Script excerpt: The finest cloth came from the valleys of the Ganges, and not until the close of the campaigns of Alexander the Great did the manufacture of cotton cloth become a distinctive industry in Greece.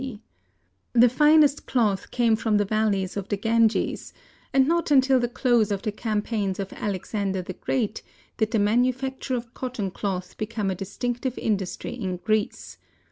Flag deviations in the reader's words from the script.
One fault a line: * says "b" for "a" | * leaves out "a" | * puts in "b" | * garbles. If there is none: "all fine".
all fine